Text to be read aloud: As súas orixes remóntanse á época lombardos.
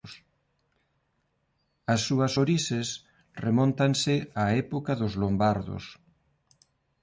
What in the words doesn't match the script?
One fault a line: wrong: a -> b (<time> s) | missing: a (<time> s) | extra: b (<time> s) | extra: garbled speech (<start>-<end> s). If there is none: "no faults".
extra: dos (5.0 s)